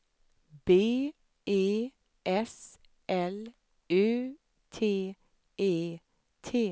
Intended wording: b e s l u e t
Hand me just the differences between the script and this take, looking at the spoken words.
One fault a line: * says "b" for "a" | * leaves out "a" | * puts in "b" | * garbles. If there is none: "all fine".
* puts in "t"